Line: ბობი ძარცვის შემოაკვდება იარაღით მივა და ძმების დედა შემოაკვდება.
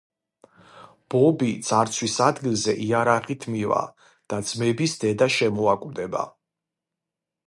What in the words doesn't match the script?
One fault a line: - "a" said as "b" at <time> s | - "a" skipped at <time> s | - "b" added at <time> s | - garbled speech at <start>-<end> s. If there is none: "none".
- "შემოაკვდება" said as "ადგილზე" at 2.3 s